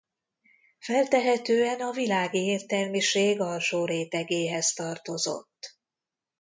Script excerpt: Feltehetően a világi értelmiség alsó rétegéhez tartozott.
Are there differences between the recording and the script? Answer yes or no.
no